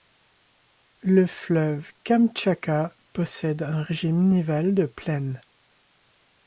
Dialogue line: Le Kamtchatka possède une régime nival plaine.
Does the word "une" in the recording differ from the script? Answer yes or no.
yes